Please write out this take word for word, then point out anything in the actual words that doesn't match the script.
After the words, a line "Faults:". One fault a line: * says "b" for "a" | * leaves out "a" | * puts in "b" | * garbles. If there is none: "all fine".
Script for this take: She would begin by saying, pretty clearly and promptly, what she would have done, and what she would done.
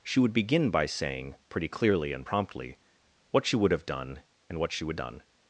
She would begin by saying, pretty clearly and promptly, what she would have done, and what she would done.
Faults:
all fine